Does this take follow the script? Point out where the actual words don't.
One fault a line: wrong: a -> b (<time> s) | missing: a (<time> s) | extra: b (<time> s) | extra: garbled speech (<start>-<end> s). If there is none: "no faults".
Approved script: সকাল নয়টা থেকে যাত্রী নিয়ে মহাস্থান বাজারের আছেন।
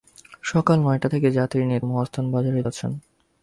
no faults